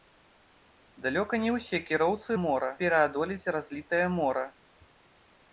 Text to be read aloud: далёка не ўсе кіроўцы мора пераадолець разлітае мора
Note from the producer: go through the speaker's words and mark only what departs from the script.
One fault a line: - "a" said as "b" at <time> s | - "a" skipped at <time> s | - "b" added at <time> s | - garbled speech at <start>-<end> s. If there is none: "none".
none